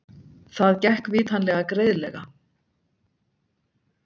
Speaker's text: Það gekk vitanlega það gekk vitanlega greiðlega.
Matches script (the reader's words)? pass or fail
fail